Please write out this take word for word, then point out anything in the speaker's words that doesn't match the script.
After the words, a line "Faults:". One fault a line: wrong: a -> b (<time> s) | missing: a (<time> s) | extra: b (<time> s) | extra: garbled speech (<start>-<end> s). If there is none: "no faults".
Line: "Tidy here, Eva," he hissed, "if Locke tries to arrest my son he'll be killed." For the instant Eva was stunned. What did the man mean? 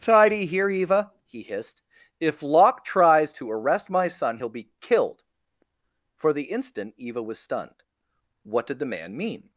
"Tidy here, Eva," he hissed, "if Locke tries to arrest my son he'll be killed." For the instant Eva was stunned. What did the man mean?
Faults:
no faults